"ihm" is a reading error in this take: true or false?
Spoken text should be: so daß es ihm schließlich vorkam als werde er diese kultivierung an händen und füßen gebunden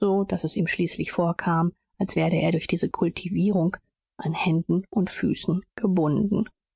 false